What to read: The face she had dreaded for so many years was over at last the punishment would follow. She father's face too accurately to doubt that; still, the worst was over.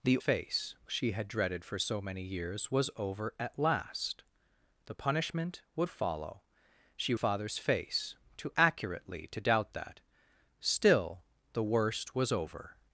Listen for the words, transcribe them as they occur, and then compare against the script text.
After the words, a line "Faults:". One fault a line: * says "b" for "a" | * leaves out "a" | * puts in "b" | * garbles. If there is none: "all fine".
The face she had dreaded for so many years was over at last the punishment would follow. She father's face too accurately to doubt that; still, the worst was over.
Faults:
all fine